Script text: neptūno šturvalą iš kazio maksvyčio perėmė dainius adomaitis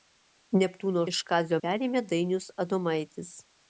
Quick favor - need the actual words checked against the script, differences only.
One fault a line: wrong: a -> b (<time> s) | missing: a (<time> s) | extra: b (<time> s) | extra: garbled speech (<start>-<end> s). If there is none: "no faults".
missing: šturvalą (1.0 s)
missing: maksvyčio (1.6 s)